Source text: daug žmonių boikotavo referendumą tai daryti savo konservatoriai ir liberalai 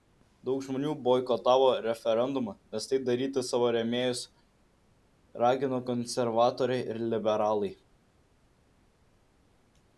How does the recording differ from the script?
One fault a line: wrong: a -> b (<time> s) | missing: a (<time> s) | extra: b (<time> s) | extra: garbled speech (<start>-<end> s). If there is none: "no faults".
extra: nes (2.8 s)
extra: rėmėjus ragino (3.8 s)